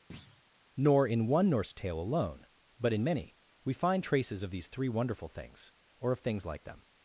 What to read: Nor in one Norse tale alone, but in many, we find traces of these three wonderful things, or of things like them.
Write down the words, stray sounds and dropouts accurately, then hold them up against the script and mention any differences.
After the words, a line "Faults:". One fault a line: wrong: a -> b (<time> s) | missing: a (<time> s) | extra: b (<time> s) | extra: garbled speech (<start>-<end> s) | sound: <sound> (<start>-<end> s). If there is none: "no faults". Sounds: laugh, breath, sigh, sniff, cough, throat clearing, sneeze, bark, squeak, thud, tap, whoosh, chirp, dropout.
Nor in one Norse tale alone, but in many, we find traces of these three wonderful things, or of things like them.
Faults:
sound: thud (0.1-0.4 s)